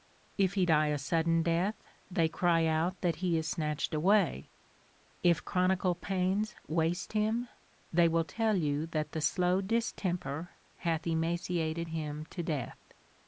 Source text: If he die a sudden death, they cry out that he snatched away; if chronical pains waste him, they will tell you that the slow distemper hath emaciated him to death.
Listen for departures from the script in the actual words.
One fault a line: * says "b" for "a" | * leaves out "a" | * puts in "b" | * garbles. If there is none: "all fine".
* puts in "is"